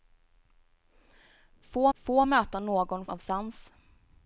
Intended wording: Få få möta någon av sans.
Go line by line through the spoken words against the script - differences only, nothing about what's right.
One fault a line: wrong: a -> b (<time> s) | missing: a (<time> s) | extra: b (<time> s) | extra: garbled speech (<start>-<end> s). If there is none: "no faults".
no faults